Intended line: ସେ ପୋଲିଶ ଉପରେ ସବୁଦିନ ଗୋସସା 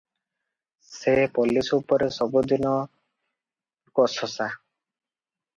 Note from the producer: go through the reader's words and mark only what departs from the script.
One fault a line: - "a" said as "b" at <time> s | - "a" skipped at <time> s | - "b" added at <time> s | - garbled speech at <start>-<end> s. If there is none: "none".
none